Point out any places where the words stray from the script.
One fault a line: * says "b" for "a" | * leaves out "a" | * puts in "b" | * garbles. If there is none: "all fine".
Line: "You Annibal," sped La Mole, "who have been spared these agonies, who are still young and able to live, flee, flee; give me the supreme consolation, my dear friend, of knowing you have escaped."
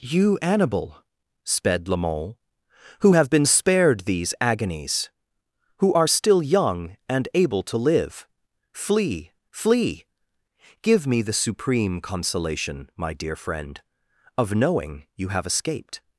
all fine